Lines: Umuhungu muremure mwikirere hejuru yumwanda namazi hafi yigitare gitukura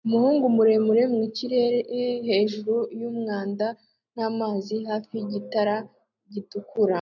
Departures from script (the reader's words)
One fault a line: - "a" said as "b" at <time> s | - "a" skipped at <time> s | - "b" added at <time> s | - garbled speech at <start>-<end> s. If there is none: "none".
none